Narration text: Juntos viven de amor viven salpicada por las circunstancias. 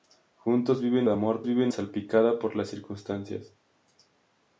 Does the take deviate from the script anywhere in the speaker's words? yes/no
no